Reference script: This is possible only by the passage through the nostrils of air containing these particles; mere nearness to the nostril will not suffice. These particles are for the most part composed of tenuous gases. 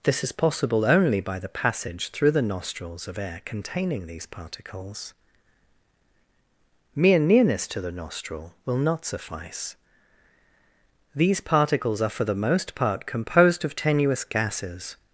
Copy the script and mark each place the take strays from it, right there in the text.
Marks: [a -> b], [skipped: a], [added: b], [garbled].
This is possible only by the passage through the nostrils of air containing these particles; mere nearness to the nostril will not suffice. These particles are for the most part composed of tenuous gases.